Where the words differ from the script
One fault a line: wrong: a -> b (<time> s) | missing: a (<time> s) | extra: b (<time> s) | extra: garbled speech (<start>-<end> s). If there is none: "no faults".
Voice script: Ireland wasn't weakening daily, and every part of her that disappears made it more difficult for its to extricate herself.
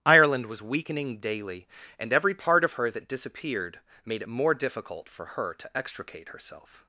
wrong: wasn't -> was (0.5 s)
wrong: disappears -> disappeared (3.1 s)
wrong: its -> her (5.4 s)